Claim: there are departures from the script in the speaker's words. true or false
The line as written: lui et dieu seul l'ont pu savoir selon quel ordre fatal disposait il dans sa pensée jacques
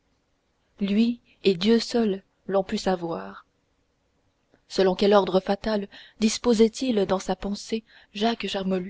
false